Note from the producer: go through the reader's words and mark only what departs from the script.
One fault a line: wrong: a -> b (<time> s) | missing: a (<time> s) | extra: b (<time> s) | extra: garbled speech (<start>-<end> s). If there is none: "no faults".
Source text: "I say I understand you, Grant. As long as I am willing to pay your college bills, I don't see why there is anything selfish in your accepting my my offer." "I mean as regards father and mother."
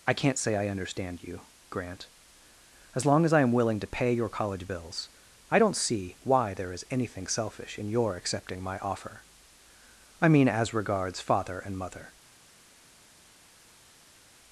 extra: can't (0.1 s)
missing: my (8.8 s)